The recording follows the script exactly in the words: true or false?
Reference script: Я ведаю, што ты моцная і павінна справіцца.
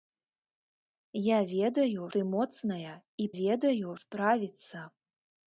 false